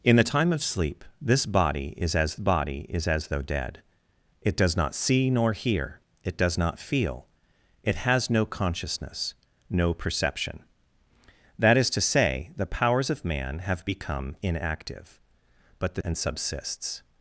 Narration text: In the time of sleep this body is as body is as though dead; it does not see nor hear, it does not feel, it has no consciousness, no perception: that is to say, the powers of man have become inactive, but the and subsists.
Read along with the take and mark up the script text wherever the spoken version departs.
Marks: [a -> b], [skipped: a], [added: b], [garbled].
In the time of sleep this body is as body is as though dead; it does not see nor hear, it does not feel, it has no consciousness, no perception: that is to say, the powers of man have become inactive, but the and subsists.